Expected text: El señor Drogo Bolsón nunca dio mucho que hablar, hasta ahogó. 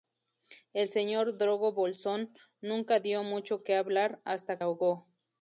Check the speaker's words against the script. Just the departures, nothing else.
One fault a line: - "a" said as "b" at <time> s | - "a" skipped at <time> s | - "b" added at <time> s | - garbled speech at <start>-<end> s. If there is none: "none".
none